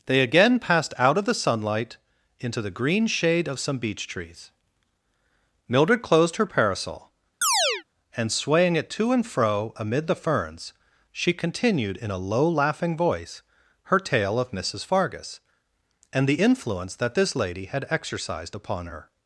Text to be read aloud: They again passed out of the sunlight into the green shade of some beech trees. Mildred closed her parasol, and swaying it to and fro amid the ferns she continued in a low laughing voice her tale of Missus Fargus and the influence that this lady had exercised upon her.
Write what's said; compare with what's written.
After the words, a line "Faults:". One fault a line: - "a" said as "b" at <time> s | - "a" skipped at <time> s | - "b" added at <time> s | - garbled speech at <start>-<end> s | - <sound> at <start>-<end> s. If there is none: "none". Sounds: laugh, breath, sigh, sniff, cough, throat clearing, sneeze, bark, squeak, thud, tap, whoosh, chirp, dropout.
They again passed out of the sunlight into the green shade of some beech trees. Mildred closed her parasol, and swaying it to and fro amid the ferns she continued in a low laughing voice her tale of Missus Fargus and the influence that this lady had exercised upon her.
Faults:
- chirp at 7.4-7.8 s